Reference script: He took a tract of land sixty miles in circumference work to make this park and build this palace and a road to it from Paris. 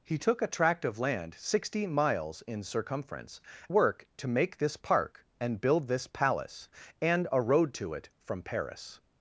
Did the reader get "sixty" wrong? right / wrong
right